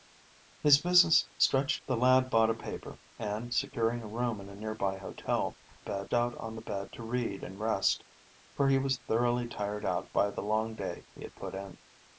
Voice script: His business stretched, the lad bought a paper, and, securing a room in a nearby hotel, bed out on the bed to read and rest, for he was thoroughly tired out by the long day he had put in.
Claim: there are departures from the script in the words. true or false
false